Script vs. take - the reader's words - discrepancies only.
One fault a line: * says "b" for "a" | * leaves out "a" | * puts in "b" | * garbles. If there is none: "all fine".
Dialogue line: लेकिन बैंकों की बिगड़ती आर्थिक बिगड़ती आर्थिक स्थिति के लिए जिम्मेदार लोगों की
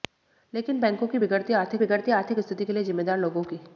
all fine